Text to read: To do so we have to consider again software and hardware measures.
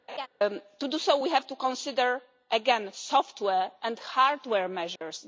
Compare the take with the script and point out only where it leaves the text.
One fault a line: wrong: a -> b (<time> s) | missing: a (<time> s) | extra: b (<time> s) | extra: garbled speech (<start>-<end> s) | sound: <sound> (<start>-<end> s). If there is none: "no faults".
sound: laugh (0.1-0.3 s)
sound: dropout (5.0-5.0 s)